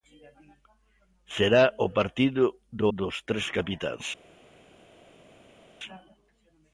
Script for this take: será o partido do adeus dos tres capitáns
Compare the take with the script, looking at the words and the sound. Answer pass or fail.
fail